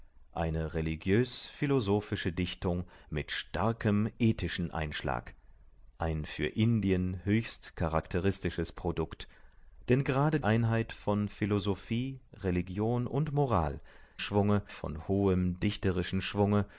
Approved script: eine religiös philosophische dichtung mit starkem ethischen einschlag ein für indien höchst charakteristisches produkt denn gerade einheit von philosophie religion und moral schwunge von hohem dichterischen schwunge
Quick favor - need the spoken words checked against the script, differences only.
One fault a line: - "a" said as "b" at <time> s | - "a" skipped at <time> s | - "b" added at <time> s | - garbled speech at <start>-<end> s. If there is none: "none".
none